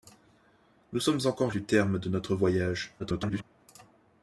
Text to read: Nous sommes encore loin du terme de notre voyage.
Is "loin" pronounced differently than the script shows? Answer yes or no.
yes